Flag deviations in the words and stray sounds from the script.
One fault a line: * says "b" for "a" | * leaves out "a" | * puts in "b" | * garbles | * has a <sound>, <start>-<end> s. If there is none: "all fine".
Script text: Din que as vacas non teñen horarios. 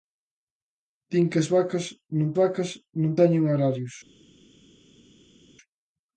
* puts in "vacas non"